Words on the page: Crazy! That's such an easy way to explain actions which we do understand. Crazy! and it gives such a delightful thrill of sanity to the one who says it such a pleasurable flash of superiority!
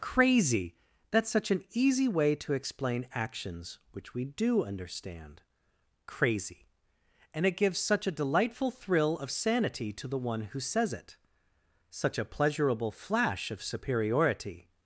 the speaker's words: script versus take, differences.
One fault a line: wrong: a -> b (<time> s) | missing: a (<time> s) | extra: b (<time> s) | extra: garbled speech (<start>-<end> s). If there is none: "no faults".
no faults